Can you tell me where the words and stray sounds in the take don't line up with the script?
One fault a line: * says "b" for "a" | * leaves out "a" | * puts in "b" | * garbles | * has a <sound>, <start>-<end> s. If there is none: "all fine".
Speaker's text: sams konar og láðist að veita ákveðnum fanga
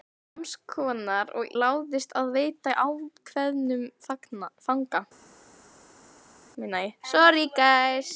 all fine